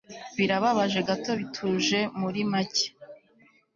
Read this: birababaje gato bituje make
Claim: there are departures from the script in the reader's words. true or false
true